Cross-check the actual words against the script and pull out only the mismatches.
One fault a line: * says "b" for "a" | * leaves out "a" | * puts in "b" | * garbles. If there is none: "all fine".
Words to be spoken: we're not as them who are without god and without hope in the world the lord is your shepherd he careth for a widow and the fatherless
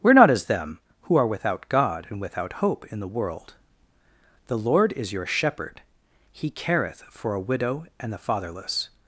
all fine